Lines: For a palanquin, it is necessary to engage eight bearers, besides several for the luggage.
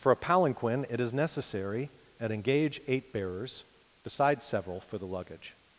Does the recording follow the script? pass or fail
fail